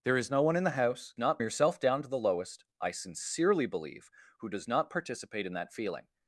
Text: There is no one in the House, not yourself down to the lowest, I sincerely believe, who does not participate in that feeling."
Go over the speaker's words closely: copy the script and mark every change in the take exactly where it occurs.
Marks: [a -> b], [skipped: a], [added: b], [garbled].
There is no one in the House, not yourself down to the lowest, I sincerely believe, who does not participate in that feeling."